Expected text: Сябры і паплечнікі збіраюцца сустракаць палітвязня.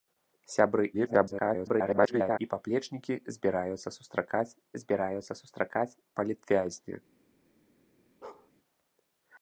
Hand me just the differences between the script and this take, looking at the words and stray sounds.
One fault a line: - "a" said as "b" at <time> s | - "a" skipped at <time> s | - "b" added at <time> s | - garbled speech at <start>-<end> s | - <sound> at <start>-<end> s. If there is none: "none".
- garbled speech at 0.9-2.4 s
- "збіраюцца сустракаць" added at 4.8 s
- bark at 8.2-8.5 s